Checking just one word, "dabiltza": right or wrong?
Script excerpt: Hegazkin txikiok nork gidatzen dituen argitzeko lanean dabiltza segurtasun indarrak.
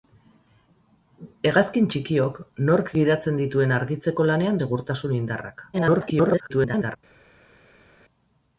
wrong